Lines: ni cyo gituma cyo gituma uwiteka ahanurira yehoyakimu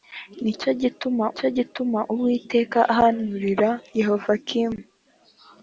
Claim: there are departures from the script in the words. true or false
false